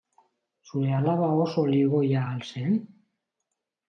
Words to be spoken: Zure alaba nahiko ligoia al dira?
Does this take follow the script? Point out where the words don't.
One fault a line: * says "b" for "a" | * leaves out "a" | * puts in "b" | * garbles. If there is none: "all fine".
* says "oso" for "nahiko"
* says "zen" for "dira"